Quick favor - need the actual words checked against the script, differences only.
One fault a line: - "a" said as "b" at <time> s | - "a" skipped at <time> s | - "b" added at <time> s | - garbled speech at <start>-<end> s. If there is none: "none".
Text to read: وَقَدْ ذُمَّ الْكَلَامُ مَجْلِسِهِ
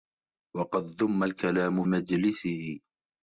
none